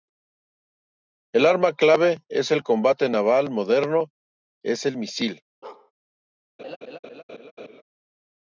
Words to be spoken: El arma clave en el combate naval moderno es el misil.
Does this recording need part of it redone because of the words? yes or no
no